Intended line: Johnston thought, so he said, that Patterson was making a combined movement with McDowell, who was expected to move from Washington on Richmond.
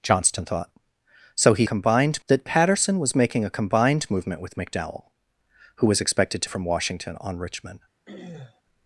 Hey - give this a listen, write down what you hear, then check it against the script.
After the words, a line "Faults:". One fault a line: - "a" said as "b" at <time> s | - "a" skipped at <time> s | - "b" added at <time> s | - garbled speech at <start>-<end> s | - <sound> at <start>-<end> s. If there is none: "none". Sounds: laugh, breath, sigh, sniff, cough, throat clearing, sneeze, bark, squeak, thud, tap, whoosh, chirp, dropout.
Johnston thought, so he combined, that Patterson was making a combined movement with McDowell, who was expected to from Washington on Richmond.
Faults:
- "said" said as "combined" at 1.6 s
- "move" skipped at 6.5 s
- throat clearing at 8.1-8.6 s